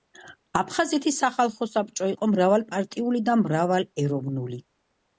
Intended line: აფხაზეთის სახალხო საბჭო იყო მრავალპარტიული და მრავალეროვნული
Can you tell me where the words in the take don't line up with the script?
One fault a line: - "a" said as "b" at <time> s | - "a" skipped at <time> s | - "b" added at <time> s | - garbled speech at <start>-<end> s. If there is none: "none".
none